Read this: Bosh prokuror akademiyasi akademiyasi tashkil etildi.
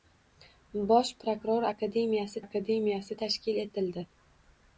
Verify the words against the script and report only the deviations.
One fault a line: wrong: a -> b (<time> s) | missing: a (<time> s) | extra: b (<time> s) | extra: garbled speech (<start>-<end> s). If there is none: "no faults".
no faults